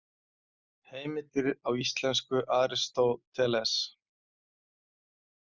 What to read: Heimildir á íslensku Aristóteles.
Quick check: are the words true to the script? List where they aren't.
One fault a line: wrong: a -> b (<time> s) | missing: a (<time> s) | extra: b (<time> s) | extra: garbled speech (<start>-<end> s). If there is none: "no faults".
no faults